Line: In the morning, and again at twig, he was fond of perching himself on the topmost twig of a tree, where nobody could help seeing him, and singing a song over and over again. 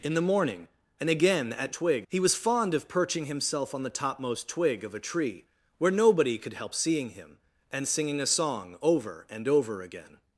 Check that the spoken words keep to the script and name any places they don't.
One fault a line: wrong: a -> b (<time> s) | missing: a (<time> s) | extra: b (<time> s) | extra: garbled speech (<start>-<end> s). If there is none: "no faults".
no faults